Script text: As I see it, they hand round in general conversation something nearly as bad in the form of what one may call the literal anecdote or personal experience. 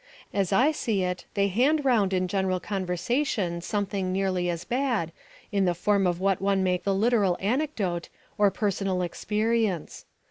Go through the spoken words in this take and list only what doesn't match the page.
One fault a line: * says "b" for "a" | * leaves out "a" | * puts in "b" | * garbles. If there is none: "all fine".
* leaves out "call"